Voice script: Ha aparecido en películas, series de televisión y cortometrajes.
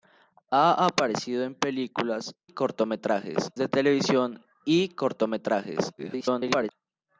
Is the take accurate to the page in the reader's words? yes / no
no